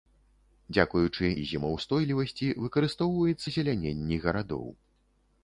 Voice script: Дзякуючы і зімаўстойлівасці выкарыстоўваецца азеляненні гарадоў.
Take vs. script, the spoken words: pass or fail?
pass